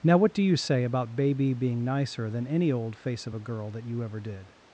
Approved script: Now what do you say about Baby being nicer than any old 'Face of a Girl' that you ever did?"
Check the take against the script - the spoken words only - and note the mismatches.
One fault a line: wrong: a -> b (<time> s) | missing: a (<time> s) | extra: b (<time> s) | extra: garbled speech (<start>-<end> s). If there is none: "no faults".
no faults